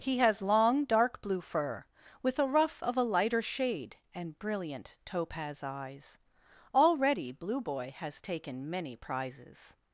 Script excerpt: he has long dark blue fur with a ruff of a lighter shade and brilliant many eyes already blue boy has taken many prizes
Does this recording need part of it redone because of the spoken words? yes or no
yes